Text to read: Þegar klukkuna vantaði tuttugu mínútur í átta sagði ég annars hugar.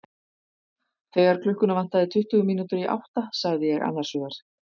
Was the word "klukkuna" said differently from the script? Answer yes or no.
no